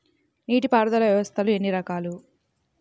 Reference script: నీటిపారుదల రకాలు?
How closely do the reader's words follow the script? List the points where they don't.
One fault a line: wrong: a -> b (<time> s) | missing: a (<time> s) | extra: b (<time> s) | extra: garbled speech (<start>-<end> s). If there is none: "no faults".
extra: వ్యవస్థలు ఎన్ని (1.0 s)